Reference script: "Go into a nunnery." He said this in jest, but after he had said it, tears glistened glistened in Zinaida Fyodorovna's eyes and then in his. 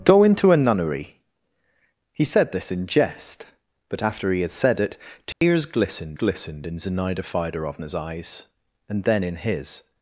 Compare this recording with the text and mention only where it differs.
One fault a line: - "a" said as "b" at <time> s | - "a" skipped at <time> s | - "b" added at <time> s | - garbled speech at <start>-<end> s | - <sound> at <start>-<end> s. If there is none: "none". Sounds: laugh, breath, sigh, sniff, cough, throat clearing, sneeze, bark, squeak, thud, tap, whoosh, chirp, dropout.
- dropout at 5.3-5.4 s